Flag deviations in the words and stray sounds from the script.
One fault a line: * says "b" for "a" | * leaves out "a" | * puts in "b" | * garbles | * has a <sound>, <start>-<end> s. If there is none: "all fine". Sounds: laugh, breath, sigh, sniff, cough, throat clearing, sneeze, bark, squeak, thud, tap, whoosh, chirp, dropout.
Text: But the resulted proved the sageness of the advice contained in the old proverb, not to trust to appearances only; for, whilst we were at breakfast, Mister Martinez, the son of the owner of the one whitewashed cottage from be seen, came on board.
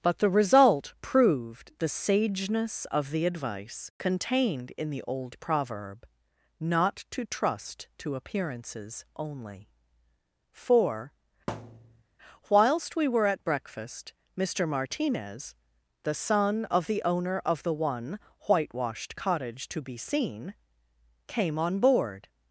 * says "result" for "resulted"
* has a thud, 11.5-12.0 s
* says "to" for "from"